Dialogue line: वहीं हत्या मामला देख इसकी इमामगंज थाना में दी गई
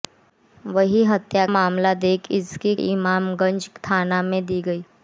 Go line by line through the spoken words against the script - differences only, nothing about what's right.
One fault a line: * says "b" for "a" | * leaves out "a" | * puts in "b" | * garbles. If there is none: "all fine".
all fine